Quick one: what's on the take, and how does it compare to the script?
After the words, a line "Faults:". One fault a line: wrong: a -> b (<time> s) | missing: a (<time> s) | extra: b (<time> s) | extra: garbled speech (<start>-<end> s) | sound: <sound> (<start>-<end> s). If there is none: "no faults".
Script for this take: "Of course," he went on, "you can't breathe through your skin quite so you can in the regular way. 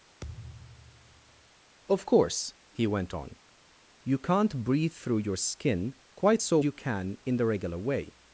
"Of course," he went on, "you can't breathe through your skin quite so you can in the regular way.
Faults:
sound: thud (0.2-1.5 s)